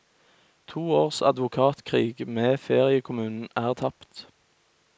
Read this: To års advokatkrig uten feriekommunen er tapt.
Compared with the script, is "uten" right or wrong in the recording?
wrong